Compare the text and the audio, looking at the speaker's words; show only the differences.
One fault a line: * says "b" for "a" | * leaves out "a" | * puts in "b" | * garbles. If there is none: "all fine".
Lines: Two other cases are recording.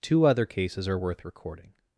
* puts in "worth"